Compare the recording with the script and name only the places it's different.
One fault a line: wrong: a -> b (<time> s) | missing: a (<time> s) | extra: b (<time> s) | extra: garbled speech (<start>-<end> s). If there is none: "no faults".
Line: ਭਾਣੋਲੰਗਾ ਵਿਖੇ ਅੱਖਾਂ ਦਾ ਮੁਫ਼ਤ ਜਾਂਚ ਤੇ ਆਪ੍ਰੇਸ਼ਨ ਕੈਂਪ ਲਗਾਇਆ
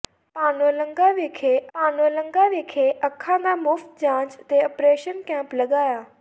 extra: ਭਾਣੋਲੰਗਾ ਵਿਖੇ (1.7 s)